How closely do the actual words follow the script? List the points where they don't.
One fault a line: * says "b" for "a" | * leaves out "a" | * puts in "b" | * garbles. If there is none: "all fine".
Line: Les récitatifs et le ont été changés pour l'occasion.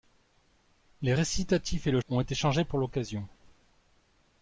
all fine